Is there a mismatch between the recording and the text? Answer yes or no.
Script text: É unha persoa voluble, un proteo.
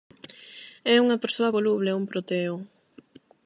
no